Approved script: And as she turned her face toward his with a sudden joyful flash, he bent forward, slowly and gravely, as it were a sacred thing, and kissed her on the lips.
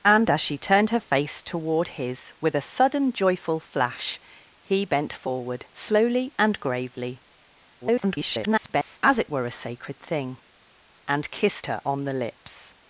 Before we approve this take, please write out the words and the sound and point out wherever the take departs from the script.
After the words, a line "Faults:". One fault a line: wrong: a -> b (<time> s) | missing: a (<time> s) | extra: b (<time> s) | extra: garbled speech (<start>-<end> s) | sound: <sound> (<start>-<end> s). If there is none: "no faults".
And as she turned her face toward his with a sudden joyful flash, he bent forward, slowly and gravely, [garbled] as it were a sacred thing, and kissed her on the lips.
Faults:
extra: garbled speech (7.8-9.0 s)